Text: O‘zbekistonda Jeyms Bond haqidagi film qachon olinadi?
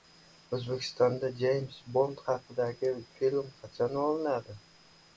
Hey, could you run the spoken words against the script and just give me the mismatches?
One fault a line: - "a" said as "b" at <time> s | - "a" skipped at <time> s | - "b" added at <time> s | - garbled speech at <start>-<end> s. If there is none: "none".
none